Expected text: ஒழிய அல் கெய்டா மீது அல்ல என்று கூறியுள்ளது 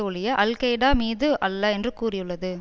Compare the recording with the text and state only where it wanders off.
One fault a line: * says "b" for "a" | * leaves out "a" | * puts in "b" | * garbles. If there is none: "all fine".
all fine